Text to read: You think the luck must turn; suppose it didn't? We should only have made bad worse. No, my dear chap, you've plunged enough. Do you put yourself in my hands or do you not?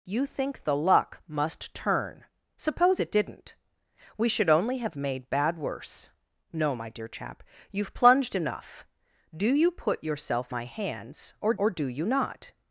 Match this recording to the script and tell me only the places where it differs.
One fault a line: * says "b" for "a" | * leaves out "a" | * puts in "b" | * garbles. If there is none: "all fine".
* leaves out "in"
* puts in "or"